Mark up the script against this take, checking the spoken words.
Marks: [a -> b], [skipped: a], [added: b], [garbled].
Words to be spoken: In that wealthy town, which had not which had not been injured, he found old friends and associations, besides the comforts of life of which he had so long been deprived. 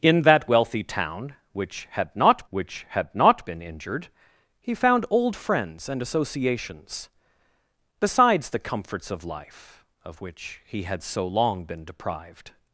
In that wealthy town, which had not which had not been injured, he found old friends and associations, besides the comforts of life of which he had so long been deprived.